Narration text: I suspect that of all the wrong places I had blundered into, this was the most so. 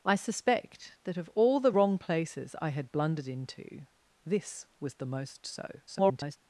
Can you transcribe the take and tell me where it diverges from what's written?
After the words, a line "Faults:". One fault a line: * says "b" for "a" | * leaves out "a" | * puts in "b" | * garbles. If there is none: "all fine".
I suspect that of all the wrong places I had blundered into, this was the most so. [garbled]
Faults:
* garbles